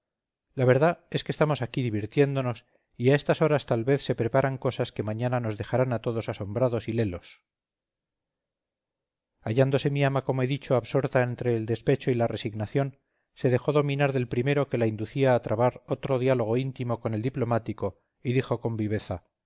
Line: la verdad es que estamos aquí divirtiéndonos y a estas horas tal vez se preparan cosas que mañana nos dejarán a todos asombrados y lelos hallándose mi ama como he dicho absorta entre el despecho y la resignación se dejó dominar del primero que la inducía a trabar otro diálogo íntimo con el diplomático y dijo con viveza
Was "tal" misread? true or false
false